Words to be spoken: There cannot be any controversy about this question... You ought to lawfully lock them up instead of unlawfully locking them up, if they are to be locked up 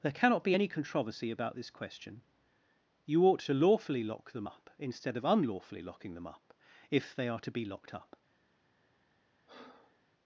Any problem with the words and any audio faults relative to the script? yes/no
yes